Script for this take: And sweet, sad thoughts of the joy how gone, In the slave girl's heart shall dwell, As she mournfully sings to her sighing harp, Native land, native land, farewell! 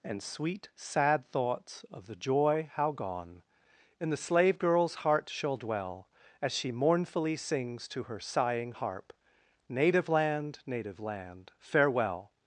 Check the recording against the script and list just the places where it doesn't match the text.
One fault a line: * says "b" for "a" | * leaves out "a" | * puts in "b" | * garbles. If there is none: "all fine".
all fine